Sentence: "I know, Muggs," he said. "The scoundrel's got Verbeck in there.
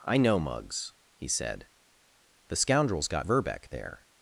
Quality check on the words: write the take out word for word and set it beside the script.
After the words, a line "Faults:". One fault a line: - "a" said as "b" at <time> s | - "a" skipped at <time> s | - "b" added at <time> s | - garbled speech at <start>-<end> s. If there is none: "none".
"I know, Muggs," he said. "The scoundrel's got Verbeck there.
Faults:
- "in" skipped at 3.7 s